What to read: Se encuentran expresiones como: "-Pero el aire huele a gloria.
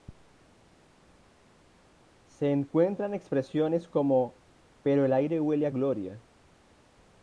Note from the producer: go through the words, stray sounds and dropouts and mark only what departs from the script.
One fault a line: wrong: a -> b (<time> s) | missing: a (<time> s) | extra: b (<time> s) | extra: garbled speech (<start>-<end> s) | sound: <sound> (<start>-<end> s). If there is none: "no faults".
no faults